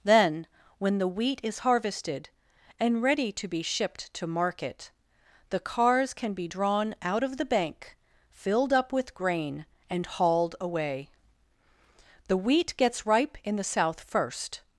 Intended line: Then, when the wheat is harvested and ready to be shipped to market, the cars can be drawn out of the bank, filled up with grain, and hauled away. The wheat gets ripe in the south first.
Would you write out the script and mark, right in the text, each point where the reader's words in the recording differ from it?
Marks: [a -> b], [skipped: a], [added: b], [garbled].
Then, when the wheat is harvested and ready to be shipped to market, the cars can be drawn out of the bank, filled up with grain, and hauled away. The wheat gets ripe in the south first.